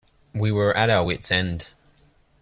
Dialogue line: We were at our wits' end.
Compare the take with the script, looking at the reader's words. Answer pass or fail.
pass